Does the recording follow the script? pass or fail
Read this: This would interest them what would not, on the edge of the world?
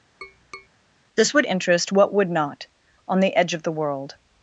fail